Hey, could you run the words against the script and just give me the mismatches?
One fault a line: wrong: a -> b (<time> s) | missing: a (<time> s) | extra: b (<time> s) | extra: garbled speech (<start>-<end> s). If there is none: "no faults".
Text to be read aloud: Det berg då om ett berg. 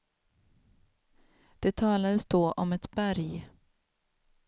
wrong: berg -> talades (1.7 s)